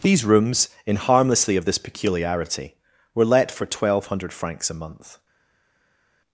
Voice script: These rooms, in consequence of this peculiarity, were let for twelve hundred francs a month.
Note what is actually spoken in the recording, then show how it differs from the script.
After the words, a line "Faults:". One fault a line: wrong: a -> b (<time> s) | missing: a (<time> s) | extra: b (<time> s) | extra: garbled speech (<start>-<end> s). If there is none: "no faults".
These rooms, in harmlessly of this peculiarity, were let for twelve hundred francs a month.
Faults:
wrong: consequence -> harmlessly (0.9 s)